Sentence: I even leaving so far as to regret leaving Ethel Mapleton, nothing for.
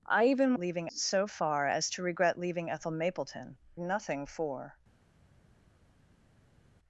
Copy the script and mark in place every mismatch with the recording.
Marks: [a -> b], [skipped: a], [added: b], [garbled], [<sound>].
I even leaving so far as to regret leaving Ethel Mapleton, nothing for.